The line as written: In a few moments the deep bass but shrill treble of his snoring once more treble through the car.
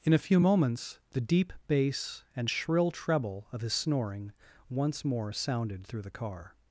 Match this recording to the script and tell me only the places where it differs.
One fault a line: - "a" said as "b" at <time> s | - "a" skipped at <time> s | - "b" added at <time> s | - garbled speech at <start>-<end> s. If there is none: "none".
- "but" said as "and" at 2.3 s
- "treble" said as "sounded" at 5.3 s